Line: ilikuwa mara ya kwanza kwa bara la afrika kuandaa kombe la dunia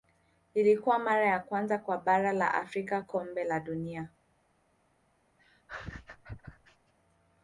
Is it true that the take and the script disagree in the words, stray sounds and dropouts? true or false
true